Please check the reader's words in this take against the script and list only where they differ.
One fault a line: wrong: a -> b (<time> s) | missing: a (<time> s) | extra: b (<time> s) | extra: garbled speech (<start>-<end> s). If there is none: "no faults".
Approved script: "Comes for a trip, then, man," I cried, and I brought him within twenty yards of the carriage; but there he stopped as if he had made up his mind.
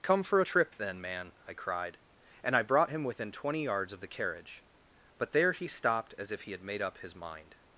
wrong: Comes -> Come (0.0 s)